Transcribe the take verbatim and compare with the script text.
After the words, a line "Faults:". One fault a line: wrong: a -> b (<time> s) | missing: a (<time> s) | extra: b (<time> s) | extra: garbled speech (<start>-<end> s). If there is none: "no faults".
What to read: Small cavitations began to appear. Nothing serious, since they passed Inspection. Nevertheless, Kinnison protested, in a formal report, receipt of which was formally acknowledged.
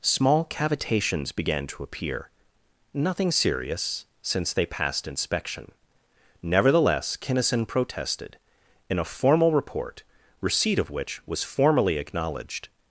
Small cavitations began to appear. Nothing serious, since they passed Inspection. Nevertheless, Kinnison protested, in a formal report, receipt of which was formally acknowledged.
Faults:
no faults